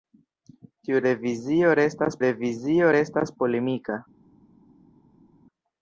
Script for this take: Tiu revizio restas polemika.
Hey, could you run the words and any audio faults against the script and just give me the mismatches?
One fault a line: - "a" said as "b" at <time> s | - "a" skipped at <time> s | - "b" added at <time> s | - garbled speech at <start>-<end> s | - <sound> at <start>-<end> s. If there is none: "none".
- "revizio restas" added at 2.2 s